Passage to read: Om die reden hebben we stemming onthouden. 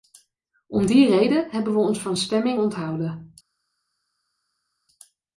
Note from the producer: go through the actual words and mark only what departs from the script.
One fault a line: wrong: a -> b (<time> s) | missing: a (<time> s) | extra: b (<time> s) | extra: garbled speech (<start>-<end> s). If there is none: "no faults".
extra: ons van (1.8 s)